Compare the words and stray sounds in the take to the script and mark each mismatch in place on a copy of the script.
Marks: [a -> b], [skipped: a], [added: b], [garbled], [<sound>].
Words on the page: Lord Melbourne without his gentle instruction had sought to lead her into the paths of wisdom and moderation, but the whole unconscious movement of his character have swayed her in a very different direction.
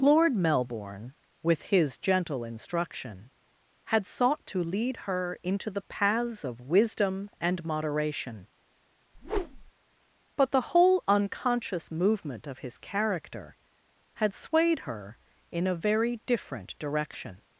Lord Melbourne [without -> with] his gentle instruction had sought to lead her into the paths of wisdom and moderation, [whoosh] but the whole unconscious movement of his character [have -> had] swayed her in a very different direction.